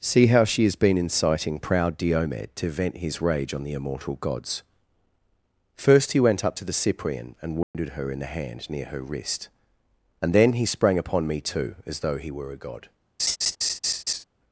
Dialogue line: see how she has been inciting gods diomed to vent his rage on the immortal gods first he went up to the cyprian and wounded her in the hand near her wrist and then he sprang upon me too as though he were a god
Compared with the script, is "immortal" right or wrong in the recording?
right